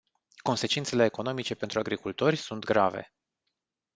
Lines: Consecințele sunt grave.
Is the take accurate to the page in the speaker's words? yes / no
no